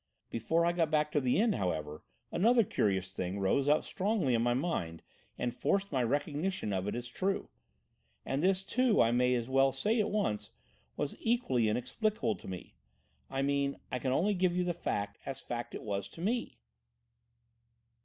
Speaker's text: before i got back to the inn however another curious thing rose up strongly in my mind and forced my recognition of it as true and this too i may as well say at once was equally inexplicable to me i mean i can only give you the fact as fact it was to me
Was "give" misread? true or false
false